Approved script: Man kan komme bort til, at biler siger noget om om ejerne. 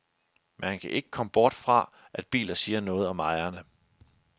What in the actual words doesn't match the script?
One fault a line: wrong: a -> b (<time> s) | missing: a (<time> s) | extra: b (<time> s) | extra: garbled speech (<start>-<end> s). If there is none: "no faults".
extra: ikke (0.9 s)
wrong: til -> fra (1.5 s)
missing: om (3.2 s)